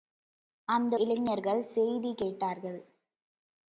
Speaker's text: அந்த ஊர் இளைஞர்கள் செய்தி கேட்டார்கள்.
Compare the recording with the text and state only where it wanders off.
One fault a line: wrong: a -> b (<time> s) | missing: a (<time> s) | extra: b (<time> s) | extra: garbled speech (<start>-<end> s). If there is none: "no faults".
missing: ஊர் (0.9 s)